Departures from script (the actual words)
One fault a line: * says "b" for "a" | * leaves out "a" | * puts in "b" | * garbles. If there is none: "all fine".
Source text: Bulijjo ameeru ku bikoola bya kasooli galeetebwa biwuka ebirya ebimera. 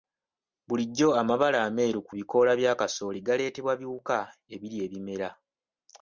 * puts in "amabala"